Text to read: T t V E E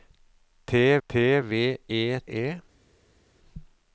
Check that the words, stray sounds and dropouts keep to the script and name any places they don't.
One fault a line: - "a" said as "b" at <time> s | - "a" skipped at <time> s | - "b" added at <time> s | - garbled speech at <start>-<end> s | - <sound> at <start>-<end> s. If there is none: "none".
none